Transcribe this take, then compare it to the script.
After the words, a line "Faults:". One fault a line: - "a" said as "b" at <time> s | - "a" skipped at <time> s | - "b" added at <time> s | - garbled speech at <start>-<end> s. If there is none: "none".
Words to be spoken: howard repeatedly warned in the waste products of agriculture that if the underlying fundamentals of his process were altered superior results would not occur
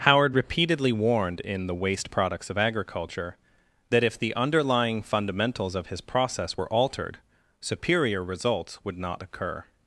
howard repeatedly warned in the waste products of agriculture that if the underlying fundamentals of his process were altered superior results would not occur
Faults:
none